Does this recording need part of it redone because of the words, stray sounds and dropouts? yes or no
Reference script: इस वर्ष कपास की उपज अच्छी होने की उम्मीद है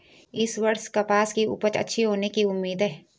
no